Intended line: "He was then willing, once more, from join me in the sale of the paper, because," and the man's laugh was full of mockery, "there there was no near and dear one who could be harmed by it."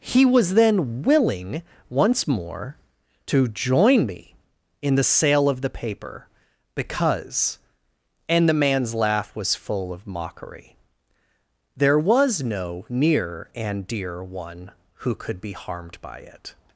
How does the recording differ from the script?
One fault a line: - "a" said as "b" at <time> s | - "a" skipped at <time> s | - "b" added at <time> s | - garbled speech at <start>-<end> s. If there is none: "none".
- "from" said as "to" at 3.3 s
- "there" skipped at 12.0 s